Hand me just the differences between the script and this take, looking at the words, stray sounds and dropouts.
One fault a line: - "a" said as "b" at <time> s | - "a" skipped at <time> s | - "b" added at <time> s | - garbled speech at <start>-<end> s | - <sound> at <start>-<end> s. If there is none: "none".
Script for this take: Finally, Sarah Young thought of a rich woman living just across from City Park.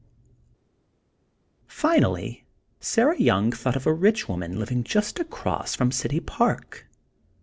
none